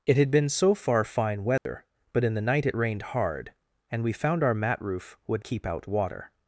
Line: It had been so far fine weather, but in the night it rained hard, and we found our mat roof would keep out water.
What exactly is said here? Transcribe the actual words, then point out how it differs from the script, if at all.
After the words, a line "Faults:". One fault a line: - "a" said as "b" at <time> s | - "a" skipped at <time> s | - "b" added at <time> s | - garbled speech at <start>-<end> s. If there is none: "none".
It had been so far fine weather, but in the night it rained hard, and we found our mat roof would keep out water.
Faults:
none